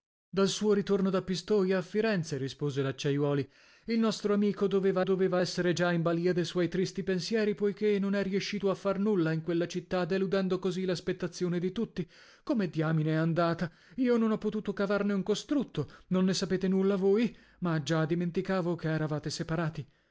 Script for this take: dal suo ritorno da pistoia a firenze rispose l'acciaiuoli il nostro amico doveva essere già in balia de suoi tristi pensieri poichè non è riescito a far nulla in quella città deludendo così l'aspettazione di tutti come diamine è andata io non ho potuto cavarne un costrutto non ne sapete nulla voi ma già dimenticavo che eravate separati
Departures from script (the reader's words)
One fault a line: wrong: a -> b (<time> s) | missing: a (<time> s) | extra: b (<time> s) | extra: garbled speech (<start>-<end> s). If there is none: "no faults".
extra: doveva (5.0 s)